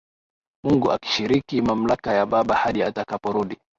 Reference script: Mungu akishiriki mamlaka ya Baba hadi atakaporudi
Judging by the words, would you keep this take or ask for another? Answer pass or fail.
pass